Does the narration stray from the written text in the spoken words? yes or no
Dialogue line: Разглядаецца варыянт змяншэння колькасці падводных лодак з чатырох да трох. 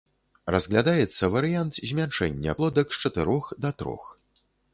yes